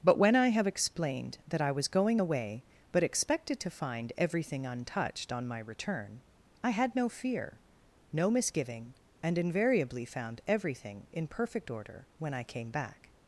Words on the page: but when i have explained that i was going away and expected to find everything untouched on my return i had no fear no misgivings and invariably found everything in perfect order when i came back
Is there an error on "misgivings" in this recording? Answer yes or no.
yes